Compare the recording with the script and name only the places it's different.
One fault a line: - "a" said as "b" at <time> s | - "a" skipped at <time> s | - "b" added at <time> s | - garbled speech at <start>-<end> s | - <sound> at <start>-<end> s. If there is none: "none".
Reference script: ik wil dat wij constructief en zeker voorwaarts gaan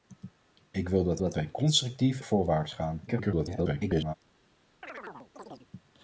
- "dat" added at 1.2 s
- "en zeker" skipped at 2.2 s
- garbled speech at 3.1-4.1 s
- chirp at 4.8-5.7 s